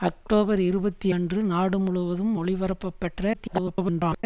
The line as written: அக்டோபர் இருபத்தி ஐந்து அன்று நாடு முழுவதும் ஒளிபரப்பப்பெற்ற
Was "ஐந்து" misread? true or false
true